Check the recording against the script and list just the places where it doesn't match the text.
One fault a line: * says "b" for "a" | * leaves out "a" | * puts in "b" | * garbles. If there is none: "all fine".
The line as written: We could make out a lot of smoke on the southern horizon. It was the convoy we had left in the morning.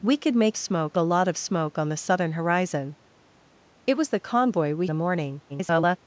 * says "smoke" for "out"
* leaves out "had left in"
* garbles